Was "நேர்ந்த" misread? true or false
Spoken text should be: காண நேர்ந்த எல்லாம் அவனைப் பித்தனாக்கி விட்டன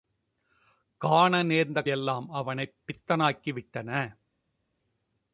false